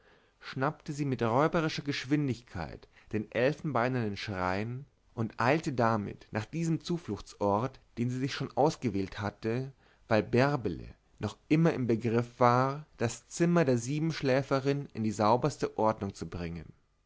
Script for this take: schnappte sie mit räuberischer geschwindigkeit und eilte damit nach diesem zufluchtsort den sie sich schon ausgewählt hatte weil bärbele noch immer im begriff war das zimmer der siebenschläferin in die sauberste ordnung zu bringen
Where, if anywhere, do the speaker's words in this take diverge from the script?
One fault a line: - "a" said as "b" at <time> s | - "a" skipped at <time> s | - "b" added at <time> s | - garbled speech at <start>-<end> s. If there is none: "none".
- "den elfenbeinernen schrein" added at 3.1 s